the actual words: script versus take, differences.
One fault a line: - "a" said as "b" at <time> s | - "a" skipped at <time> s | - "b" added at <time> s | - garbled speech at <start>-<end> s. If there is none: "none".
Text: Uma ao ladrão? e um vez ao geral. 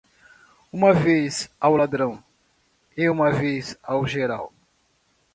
- "vez" added at 0.9 s
- "um" said as "uma" at 3.1 s